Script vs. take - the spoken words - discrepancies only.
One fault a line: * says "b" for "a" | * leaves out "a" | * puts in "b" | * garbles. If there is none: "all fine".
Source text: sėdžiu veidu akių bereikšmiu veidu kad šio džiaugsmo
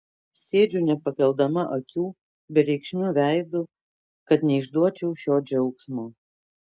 * says "nepakeldama" for "veidu"
* puts in "neišduočiau"